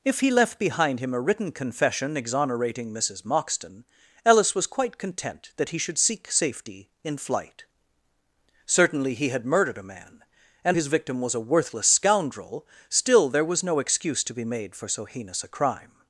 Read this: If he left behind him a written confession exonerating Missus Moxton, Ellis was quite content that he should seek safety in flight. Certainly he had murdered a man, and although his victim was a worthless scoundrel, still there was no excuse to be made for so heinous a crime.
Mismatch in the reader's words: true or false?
true